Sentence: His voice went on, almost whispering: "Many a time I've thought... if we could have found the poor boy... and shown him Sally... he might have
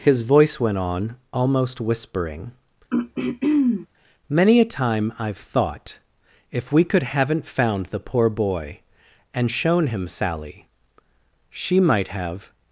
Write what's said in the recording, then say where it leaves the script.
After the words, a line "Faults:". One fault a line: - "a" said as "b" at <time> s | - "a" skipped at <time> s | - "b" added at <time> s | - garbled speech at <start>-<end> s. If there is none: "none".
His voice went on, almost whispering: "Many a time I've thought... if we could haven't found the poor boy... and shown him Sally... she might have
Faults:
- "have" said as "haven't" at 7.0 s
- "he" said as "she" at 11.5 s